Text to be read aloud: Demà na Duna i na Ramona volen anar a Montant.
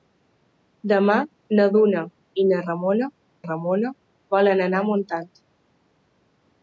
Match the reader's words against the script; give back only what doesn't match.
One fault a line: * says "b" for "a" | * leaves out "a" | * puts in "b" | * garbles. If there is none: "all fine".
* puts in "Ramona"